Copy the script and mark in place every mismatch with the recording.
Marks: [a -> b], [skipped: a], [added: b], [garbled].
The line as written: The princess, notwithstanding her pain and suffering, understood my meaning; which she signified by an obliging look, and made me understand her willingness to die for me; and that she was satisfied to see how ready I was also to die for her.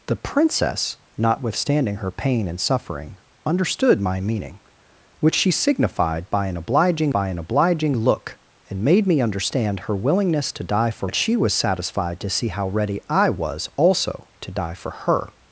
The princess, notwithstanding her pain and suffering, understood my meaning; which she signified by an obliging [added: by an obliging] look, and made me understand her willingness to die for [skipped: me; and] that she was satisfied to see how ready I was also to die for her.